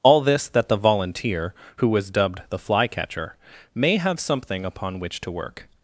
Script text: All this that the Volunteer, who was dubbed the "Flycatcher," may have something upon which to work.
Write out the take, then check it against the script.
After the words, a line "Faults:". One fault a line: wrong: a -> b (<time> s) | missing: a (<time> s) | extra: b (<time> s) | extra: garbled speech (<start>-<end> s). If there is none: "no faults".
All this that the Volunteer, who was dubbed the "Flycatcher," may have something upon which to work.
Faults:
no faults